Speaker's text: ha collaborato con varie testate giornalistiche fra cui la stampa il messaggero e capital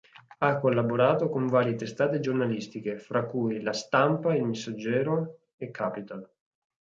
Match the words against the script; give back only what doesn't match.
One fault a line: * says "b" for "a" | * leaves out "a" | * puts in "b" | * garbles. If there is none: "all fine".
all fine